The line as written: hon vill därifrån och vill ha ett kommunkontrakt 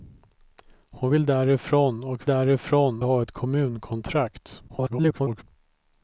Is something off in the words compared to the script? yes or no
yes